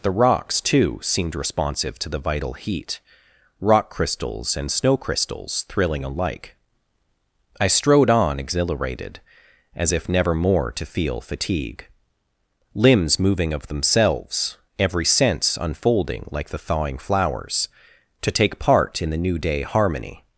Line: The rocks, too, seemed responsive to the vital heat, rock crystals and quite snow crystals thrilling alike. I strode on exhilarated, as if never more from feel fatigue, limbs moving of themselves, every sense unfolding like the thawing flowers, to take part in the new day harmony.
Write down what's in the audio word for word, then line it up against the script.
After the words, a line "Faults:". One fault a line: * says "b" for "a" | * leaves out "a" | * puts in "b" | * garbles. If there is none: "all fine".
The rocks, too, seemed responsive to the vital heat, rock crystals and snow crystals thrilling alike. I strode on exhilarated, as if never more to feel fatigue, limbs moving of themselves, every sense unfolding like the thawing flowers, to take part in the new day harmony.
Faults:
* leaves out "quite"
* says "to" for "from"